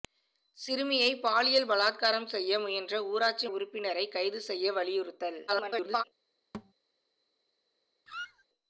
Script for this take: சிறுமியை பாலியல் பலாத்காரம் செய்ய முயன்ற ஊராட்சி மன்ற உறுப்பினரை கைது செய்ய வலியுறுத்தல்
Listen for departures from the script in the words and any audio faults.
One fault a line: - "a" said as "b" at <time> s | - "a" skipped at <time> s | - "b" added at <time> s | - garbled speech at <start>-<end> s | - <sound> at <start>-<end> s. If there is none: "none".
- "மன்ற" skipped at 3.5 s
- garbled speech at 5.5-6.0 s
- thud at 6.5-6.7 s
- squeak at 8.1-8.4 s